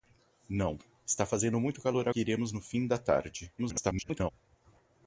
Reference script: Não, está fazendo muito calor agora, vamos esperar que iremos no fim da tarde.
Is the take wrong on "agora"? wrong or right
wrong